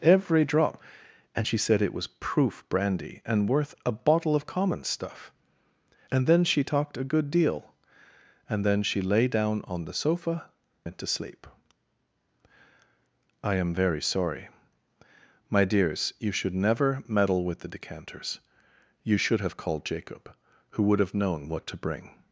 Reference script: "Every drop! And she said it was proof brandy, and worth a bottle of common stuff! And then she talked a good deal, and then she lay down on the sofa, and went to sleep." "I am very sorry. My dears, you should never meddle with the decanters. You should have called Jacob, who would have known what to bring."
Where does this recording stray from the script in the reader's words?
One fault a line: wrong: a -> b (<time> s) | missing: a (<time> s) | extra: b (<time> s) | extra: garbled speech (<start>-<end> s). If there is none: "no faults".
missing: and (10.5 s)